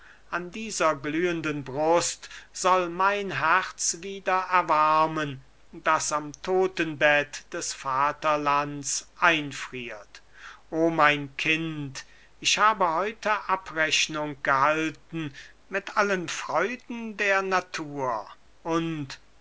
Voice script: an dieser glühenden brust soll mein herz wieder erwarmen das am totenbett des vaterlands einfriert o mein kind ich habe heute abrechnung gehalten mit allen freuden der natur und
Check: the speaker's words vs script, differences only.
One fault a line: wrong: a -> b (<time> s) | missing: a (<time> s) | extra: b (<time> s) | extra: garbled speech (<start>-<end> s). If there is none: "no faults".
no faults